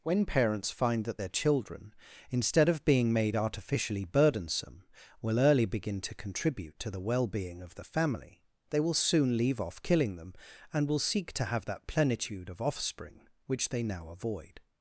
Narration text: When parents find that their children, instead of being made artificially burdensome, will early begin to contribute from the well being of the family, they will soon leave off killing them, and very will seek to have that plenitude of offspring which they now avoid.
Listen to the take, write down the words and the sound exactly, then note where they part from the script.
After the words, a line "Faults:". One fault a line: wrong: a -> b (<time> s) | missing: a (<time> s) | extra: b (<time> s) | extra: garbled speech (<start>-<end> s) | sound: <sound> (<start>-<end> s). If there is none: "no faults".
When parents find that their children, instead of being made artificially burdensome, will early begin to contribute to the well being of the family, they will soon leave off killing them, and will seek to have that plenitude of offspring which they now avoid.
Faults:
wrong: from -> to (6.8 s)
missing: very (10.9 s)